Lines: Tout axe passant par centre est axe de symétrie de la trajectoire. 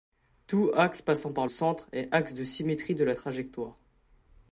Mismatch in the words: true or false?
false